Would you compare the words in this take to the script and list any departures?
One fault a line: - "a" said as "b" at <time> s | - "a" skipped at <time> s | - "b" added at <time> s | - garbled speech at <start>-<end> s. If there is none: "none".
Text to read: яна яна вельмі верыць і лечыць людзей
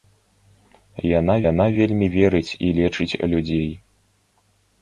none